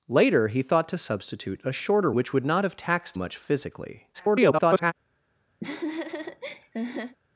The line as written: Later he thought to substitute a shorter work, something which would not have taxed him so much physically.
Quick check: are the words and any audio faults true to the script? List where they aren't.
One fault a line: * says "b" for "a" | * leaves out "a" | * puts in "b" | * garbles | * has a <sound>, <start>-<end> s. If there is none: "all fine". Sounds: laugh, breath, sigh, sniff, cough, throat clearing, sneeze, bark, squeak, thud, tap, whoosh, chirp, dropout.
* leaves out "work something"
* leaves out "him so"
* garbles
* has a laugh, 5.6-7.2 s